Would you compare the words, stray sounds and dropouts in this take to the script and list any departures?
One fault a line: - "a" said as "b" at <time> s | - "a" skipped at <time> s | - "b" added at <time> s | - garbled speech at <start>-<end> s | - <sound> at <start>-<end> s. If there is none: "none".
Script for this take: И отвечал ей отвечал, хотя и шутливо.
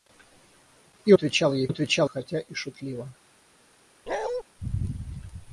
- bark at 4.1-4.4 s